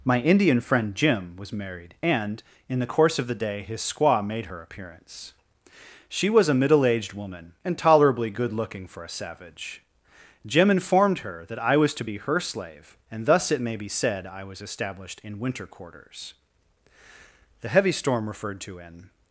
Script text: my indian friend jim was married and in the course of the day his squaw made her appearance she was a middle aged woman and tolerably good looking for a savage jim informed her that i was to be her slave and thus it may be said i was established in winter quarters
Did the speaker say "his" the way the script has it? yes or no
yes